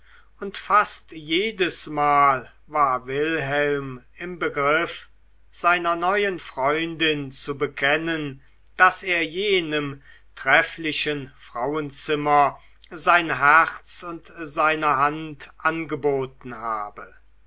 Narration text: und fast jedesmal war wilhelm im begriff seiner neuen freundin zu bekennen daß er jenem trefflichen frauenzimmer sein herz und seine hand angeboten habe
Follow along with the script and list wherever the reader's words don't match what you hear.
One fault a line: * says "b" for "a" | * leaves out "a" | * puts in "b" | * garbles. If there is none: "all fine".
all fine